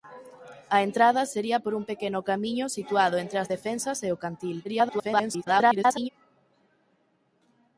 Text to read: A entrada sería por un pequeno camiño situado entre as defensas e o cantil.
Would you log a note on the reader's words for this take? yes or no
yes